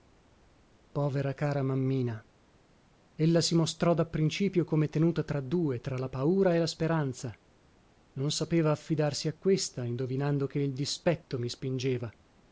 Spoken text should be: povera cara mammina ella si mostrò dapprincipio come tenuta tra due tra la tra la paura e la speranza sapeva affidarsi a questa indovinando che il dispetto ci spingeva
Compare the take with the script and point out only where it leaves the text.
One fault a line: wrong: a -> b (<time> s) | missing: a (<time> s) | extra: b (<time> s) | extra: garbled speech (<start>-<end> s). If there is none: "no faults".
missing: tra la (6.1 s)
extra: non (8.1 s)
wrong: ci -> mi (11.4 s)